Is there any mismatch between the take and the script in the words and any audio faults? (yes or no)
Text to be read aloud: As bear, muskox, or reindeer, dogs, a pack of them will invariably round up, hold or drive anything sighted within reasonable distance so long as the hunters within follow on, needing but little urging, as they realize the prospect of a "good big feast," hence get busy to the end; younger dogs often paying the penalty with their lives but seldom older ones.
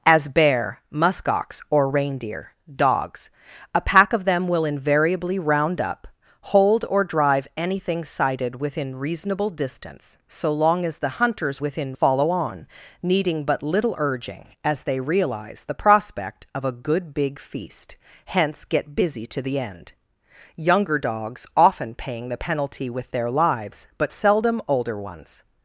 no